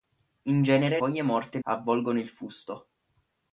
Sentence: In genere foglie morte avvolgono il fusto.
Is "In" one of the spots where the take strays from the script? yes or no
no